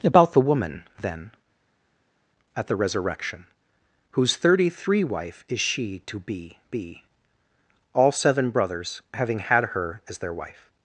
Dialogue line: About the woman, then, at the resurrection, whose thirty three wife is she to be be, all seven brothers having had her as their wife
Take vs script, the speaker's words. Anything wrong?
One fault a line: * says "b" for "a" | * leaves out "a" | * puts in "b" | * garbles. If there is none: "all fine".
all fine